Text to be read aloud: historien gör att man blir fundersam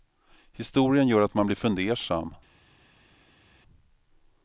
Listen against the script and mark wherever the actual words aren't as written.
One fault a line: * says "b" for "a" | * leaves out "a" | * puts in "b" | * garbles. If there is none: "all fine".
all fine